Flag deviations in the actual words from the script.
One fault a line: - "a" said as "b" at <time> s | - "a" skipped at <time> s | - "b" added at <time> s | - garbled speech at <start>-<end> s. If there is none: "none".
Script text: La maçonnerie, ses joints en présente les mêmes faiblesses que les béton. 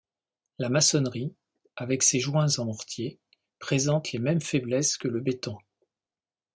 - "avec" added at 1.7 s
- "mortier" added at 2.7 s
- "les" said as "le" at 5.1 s